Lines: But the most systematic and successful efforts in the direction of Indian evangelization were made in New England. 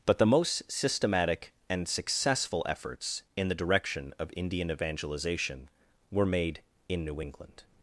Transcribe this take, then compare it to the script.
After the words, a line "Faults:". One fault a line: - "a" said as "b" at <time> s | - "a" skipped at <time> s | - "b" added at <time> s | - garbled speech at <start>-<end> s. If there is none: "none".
But the most systematic and successful efforts in the direction of Indian evangelization were made in New England.
Faults:
none